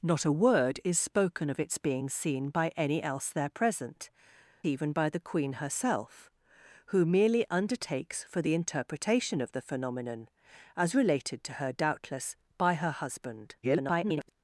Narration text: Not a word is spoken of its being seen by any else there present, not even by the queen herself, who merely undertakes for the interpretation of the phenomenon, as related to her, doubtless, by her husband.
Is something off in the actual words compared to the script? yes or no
yes